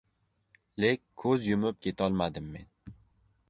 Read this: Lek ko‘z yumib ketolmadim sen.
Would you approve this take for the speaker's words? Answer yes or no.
no